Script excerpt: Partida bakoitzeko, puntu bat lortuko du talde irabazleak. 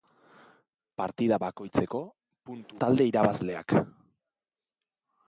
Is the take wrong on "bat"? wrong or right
wrong